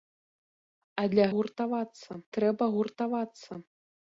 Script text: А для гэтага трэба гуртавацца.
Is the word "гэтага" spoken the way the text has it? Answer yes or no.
no